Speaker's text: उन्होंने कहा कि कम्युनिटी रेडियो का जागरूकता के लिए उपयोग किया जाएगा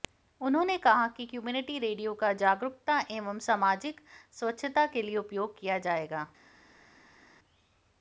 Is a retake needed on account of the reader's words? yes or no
yes